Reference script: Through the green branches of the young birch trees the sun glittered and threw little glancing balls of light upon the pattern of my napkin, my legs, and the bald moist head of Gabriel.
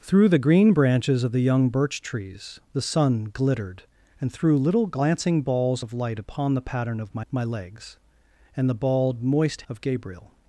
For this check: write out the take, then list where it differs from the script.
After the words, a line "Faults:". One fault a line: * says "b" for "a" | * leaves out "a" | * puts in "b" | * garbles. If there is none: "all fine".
Through the green branches of the young birch trees the sun glittered and threw little glancing balls of light upon the pattern of my my legs, and the bald moist of Gabriel.
Faults:
* leaves out "napkin"
* leaves out "head"